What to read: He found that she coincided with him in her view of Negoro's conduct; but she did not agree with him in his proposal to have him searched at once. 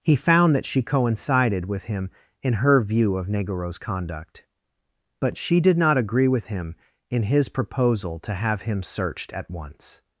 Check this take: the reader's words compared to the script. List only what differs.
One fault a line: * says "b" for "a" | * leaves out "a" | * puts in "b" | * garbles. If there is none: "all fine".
all fine